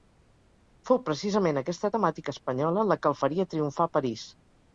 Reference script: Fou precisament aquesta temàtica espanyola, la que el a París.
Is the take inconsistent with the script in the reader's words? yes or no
yes